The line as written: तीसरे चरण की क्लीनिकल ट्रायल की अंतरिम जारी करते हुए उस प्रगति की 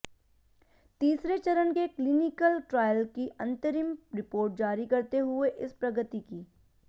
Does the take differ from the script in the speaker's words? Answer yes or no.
yes